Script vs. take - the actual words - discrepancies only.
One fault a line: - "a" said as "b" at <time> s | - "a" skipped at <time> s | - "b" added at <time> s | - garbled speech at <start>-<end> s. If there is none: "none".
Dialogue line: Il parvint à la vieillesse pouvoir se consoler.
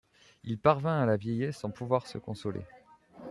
- "sans" added at 1.5 s